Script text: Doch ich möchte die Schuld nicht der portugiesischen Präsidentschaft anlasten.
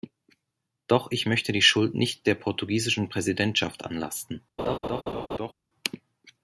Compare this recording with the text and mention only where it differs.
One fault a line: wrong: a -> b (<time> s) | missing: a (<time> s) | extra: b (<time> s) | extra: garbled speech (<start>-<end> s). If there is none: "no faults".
no faults